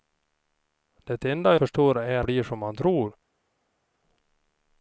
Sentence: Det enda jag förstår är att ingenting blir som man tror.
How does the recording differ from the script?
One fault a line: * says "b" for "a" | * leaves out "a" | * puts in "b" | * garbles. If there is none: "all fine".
* leaves out "jag"
* leaves out "att ingenting"